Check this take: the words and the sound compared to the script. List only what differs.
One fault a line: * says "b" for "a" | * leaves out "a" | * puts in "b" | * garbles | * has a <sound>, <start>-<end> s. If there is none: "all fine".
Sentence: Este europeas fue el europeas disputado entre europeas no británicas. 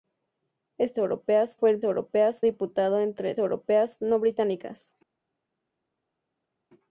all fine